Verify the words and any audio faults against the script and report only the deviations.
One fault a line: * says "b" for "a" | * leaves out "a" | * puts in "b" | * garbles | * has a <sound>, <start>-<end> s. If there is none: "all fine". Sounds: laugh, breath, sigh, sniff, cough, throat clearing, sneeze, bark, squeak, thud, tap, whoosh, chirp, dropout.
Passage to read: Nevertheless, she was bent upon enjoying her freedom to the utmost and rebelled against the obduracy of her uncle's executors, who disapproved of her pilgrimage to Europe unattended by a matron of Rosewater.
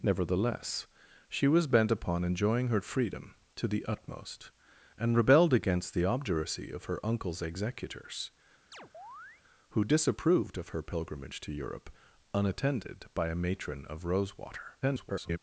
* has a chirp, 8.7-9.4 s
* garbles